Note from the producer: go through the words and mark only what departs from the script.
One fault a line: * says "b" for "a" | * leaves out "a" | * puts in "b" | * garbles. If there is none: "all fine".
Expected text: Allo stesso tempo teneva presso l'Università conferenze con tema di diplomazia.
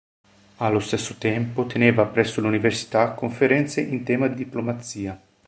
* says "in" for "con"